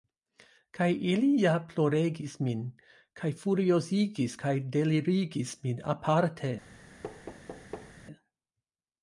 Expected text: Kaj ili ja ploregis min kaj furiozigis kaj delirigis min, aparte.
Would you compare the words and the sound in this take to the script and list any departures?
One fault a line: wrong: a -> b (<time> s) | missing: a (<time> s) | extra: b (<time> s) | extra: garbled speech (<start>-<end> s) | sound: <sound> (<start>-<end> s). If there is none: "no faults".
sound: thud (7.0-7.9 s)